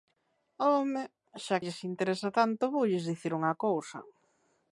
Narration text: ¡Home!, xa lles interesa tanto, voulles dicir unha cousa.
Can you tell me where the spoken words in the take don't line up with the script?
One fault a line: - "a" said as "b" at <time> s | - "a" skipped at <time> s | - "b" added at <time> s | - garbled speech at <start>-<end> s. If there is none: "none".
none